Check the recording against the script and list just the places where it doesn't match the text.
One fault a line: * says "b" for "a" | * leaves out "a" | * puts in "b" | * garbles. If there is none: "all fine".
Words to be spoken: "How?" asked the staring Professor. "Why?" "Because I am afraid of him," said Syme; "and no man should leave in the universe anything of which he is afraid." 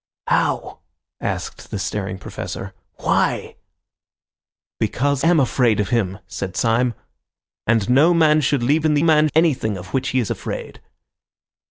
* leaves out "I"
* says "man" for "universe"